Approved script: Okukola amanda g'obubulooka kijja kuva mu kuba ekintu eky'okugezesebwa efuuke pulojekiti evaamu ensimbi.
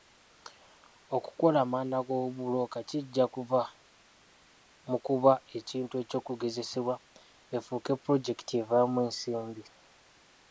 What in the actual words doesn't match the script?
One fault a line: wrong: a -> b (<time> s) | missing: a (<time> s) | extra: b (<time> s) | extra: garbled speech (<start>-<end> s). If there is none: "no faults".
no faults